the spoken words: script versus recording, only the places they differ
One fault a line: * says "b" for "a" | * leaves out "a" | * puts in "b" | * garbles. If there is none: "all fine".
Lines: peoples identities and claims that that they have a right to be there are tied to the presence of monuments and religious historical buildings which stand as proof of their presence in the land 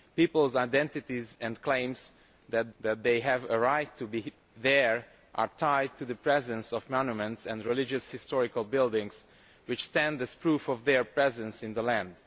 all fine